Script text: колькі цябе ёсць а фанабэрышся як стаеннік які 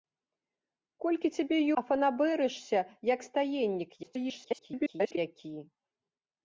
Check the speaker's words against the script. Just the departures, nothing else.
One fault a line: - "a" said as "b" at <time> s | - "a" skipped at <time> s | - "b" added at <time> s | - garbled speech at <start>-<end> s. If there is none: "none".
- "ёсць" skipped at 1.6 s
- garbled speech at 4.0-5.2 s